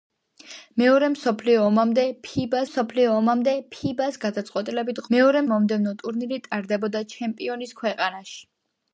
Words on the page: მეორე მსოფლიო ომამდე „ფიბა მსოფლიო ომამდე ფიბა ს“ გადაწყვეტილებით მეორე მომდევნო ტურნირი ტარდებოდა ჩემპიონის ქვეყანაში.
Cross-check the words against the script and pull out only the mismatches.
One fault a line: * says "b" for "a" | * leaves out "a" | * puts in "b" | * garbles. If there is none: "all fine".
all fine